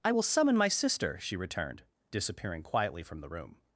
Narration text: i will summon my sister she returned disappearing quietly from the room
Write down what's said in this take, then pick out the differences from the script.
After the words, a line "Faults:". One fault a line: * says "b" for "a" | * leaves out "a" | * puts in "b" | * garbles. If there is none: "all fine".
i will summon my sister she returned disappearing quietly from the room
Faults:
all fine